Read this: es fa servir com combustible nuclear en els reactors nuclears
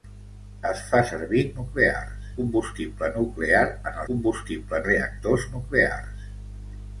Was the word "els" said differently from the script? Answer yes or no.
yes